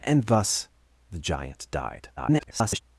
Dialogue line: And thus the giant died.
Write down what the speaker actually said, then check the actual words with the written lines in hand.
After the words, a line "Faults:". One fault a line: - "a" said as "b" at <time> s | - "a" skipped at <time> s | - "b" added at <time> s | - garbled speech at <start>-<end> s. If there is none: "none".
And thus the giant died. [garbled]
Faults:
- garbled speech at 2.2-2.8 s